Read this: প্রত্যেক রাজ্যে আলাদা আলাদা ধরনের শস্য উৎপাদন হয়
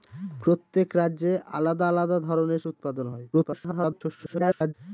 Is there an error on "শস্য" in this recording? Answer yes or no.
yes